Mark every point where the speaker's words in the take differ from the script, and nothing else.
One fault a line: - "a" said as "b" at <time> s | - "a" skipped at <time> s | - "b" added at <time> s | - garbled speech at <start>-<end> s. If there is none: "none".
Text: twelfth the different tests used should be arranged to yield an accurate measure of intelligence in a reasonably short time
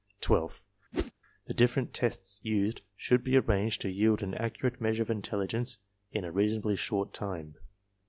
none